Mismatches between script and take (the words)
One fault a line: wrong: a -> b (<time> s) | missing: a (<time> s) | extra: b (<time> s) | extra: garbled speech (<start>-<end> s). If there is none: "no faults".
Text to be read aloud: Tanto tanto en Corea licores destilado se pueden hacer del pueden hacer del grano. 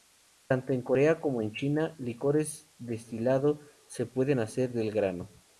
wrong: tanto -> en Corea como (0.7 s)
wrong: Corea -> China (1.5 s)
missing: pueden hacer del (4.9 s)